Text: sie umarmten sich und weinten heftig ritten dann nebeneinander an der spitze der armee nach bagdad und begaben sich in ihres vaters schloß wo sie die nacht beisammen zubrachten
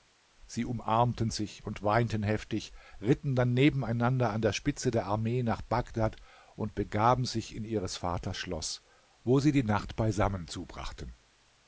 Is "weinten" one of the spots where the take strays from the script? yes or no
no